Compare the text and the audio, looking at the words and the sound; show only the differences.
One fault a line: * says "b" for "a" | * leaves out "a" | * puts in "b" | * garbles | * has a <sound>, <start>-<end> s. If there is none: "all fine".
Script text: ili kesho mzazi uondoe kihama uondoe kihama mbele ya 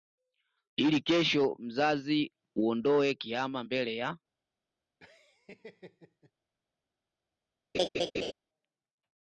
* leaves out "uondoe kihama"
* has a laugh, 5.0-6.3 s
* has a laugh, 7.7-8.3 s